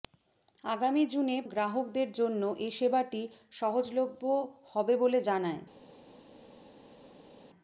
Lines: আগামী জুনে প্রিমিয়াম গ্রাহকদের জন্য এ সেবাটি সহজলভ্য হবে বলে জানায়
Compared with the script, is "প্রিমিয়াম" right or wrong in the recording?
wrong